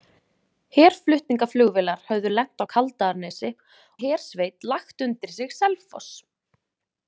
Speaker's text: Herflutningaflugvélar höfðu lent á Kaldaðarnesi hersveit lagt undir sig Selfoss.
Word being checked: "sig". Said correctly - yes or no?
yes